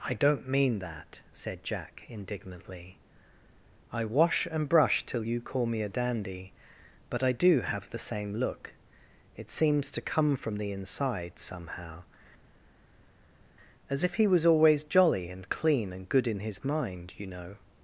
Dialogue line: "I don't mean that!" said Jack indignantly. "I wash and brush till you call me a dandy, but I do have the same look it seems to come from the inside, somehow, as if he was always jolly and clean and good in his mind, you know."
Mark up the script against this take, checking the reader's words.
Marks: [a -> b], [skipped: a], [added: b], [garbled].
"I don't mean that!" said Jack indignantly. "I wash and brush till you call me a dandy, but I do have the same look it seems to come from the inside, somehow, as if he was always jolly and clean and good in his mind, you know."